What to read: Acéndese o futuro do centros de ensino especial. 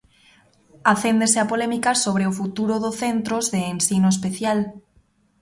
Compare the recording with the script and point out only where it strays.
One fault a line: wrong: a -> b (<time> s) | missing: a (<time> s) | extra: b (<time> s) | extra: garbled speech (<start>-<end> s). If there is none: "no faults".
extra: a polémica sobre (1.4 s)